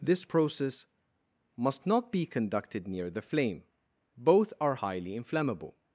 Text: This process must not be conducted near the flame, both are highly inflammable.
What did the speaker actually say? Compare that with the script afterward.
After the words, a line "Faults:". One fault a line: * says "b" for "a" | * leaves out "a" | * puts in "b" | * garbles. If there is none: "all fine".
This process must not be conducted near the flame, both are highly inflammable.
Faults:
all fine